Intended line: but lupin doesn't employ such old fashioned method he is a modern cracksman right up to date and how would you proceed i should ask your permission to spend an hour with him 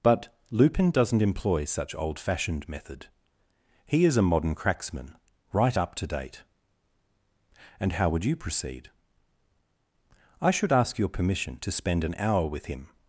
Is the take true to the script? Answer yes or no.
yes